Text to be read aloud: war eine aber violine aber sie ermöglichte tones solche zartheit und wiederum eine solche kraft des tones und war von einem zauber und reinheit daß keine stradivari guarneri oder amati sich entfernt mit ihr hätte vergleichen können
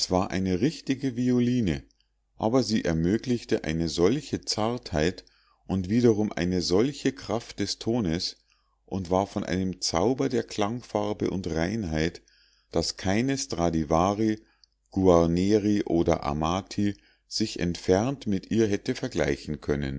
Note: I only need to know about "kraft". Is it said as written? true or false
true